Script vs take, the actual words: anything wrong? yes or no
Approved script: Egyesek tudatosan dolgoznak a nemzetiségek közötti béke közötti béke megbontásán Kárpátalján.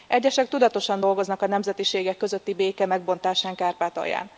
yes